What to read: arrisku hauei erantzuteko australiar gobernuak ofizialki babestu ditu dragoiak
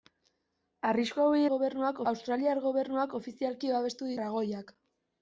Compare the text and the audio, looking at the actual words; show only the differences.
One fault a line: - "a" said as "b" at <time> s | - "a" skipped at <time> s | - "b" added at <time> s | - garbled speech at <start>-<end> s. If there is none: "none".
- "erantzuteko" said as "gobernuak" at 1.5 s
- "ditu" skipped at 4.1 s